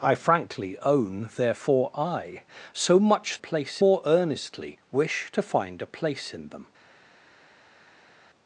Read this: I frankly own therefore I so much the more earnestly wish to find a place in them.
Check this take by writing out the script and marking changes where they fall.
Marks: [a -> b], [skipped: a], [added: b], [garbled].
I frankly own therefore I so much [the -> place] more earnestly wish to find a place in them.